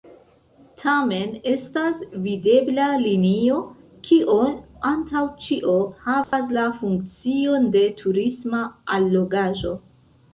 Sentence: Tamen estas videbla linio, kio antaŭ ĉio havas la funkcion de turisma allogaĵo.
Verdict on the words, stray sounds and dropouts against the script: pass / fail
fail